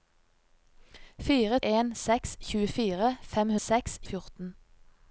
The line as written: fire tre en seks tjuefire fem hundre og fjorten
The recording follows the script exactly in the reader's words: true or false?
false